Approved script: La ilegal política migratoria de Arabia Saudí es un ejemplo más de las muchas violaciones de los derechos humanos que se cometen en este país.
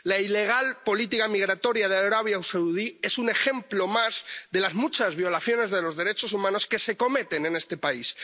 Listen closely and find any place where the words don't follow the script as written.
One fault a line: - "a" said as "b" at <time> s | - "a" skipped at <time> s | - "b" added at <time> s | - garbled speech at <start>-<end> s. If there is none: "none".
none